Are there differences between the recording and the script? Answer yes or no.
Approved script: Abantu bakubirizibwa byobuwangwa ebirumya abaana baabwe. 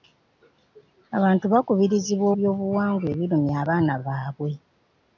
no